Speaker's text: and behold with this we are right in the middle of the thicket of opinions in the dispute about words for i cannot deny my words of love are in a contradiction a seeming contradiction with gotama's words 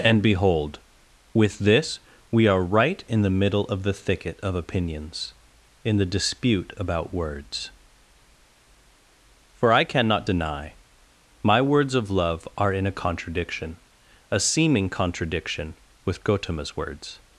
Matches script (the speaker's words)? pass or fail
pass